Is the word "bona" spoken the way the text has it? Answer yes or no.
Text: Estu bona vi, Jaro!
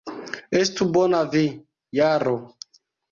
yes